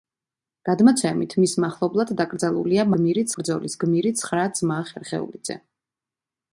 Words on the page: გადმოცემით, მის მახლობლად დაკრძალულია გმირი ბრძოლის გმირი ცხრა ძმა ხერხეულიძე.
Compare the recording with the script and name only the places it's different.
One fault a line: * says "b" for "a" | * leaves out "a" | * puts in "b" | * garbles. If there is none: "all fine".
all fine